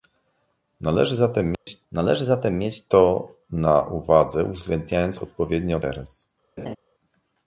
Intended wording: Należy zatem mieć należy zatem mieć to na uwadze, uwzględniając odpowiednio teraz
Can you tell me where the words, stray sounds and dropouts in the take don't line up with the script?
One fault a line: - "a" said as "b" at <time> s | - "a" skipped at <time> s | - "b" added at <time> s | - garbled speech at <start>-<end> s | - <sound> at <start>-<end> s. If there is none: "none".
- dropout at 1.5-1.7 s
- laugh at 6.6-6.8 s